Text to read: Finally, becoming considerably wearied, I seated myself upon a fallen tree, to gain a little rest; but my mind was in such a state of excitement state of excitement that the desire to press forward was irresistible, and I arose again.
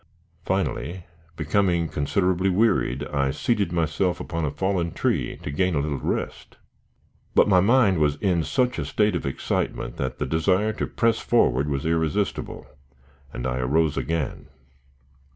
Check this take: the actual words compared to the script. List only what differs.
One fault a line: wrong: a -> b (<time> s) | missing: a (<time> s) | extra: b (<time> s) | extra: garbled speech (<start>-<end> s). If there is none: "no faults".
missing: state of excitement (10.0 s)